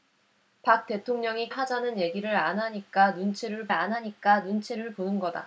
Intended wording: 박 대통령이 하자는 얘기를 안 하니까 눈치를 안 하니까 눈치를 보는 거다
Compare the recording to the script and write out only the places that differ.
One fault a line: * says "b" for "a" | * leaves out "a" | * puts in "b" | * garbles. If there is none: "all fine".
all fine